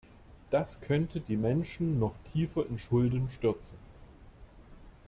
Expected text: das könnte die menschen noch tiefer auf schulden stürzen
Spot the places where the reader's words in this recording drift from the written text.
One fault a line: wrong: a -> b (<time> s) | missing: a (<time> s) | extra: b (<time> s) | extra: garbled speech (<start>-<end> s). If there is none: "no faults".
wrong: auf -> in (2.6 s)